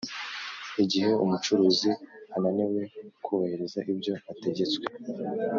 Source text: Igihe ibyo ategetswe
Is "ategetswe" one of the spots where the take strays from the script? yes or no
no